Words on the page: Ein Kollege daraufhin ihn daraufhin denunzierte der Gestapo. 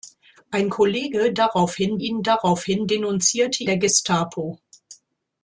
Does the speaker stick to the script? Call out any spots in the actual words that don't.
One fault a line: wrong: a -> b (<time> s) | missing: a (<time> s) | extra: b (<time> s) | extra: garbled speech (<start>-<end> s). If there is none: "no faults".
no faults